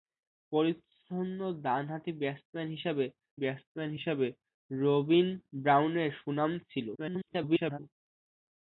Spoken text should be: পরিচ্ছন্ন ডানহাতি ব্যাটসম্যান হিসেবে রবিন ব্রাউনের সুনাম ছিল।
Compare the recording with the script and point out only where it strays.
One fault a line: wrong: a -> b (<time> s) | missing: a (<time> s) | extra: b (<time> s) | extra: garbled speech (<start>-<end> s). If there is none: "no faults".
extra: ব্যাটসম্যান হিসেবে (3.4 s)
extra: garbled speech (7.0-7.8 s)